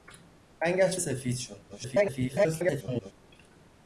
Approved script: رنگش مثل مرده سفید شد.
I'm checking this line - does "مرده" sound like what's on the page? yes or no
no